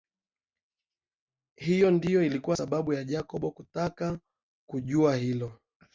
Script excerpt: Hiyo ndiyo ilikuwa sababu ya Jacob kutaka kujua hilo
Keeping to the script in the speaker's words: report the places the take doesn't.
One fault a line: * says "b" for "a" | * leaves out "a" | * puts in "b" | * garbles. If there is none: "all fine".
all fine